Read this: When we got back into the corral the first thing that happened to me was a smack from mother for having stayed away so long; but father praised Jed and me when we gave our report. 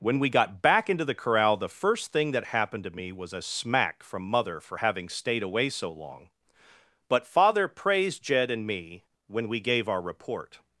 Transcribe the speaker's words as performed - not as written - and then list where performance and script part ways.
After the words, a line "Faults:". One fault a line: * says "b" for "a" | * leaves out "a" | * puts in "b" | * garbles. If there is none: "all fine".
When we got back into the corral the first thing that happened to me was a smack from mother for having stayed away so long; but father praised Jed and me when we gave our report.
Faults:
all fine